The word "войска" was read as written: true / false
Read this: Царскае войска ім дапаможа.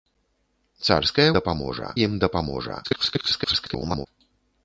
false